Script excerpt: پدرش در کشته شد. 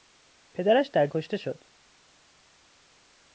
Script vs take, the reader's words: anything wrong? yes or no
no